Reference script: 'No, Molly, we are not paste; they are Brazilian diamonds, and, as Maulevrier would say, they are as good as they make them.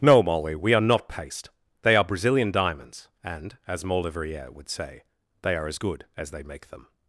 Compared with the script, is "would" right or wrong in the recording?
right